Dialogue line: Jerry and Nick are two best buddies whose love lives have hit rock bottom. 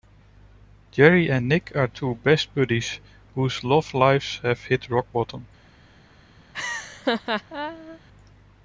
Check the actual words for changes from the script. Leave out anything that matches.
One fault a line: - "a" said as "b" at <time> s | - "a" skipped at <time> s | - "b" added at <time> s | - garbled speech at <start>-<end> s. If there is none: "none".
none